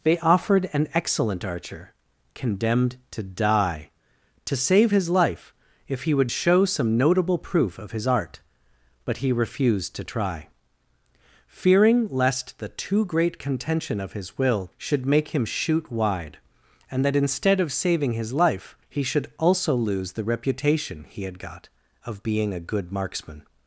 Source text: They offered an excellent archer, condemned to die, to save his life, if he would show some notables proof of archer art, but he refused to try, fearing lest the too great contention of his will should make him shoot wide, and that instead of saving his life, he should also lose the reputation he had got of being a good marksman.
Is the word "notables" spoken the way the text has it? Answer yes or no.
no